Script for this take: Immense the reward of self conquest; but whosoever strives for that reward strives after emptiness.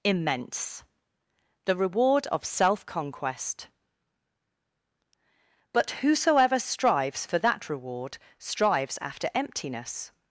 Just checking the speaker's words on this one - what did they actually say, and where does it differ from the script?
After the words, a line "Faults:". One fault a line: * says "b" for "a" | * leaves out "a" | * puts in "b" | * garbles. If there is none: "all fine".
Immense the reward of self conquest; but whosoever strives for that reward strives after emptiness.
Faults:
all fine